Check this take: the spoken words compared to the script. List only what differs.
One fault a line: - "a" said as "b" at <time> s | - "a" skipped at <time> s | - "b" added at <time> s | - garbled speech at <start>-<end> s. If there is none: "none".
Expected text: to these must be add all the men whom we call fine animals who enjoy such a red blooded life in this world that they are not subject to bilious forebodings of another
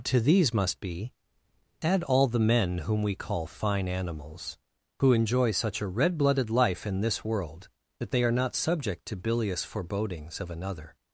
none